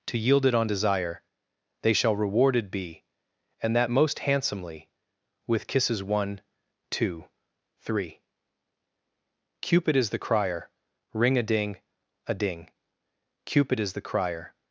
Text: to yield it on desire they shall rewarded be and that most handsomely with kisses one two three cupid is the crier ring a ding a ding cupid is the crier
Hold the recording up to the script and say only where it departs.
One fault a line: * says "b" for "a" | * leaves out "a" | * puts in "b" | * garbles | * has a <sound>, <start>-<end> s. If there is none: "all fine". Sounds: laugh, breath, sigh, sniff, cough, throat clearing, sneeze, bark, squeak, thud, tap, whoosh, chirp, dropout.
all fine